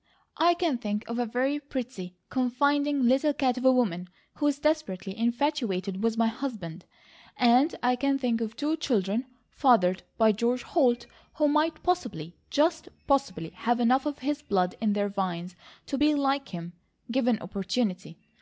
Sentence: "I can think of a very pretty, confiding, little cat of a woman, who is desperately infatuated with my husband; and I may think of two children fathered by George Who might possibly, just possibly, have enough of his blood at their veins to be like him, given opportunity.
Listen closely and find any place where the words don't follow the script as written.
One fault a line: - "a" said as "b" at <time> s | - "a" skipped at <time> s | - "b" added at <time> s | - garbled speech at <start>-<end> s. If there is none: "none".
- "may" said as "can" at 8.0 s
- "Holt" added at 10.6 s
- "at" said as "in" at 14.8 s